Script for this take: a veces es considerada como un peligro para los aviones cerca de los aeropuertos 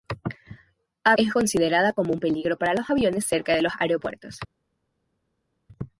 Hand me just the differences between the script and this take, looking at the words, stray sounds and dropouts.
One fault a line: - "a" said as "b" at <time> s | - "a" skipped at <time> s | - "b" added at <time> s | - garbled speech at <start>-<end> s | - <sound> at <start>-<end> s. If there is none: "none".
- "veces" skipped at 1.1 s